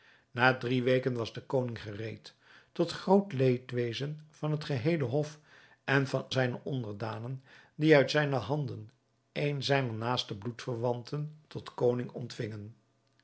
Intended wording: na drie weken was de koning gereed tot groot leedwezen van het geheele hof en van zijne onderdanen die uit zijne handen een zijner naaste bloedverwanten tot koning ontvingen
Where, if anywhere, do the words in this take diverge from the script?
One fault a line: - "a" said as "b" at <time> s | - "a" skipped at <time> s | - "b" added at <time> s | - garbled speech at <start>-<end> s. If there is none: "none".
none